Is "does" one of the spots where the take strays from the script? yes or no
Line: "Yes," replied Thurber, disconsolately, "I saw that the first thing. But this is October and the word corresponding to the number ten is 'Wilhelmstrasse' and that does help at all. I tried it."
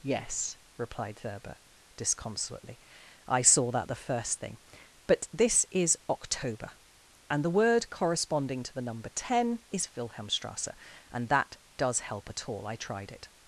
no